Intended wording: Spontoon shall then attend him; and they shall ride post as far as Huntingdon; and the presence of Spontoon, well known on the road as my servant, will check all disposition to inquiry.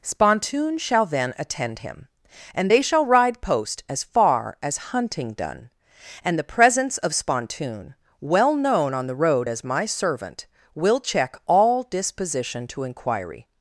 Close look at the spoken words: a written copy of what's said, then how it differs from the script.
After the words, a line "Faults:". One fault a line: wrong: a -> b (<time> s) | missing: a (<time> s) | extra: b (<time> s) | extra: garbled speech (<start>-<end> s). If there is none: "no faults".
Spontoon shall then attend him; and they shall ride post as far as Huntingdon; and the presence of Spontoon, well known on the road as my servant, will check all disposition to inquiry.
Faults:
no faults